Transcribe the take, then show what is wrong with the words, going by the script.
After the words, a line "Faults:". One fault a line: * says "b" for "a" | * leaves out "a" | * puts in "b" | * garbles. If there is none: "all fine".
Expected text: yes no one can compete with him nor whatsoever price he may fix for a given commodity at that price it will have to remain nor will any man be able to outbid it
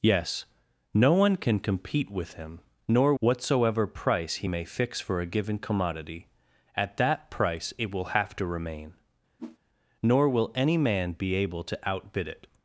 yes no one can compete with him nor whatsoever price he may fix for a given commodity at that price it will have to remain nor will any man be able to outbid it
Faults:
all fine